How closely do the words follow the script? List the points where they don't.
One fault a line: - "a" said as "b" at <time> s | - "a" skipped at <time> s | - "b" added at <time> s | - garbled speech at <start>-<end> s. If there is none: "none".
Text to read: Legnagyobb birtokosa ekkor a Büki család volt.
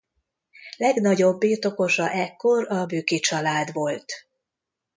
none